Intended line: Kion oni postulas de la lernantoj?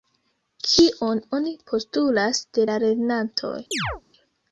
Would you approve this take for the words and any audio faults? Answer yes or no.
no